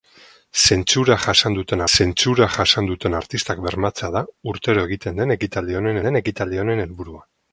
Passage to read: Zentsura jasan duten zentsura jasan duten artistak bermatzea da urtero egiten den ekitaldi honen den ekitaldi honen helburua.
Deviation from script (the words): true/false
false